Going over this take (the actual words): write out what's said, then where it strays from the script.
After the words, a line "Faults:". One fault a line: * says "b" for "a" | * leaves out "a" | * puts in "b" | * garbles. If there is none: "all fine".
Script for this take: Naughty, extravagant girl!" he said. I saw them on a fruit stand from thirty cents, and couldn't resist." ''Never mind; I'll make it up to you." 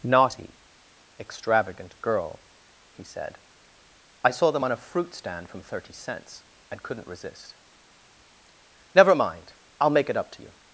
Naughty, extravagant girl!" he said. I saw them on a fruit stand from thirty cents, and couldn't resist." ''Never mind; I'll make it up to you."
Faults:
all fine